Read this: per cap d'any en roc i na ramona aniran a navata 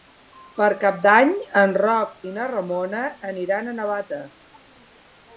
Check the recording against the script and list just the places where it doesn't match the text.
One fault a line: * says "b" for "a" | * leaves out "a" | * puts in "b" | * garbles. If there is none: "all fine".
all fine